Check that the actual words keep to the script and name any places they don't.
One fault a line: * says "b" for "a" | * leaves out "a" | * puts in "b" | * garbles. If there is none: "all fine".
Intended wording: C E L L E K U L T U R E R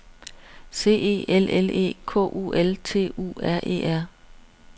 all fine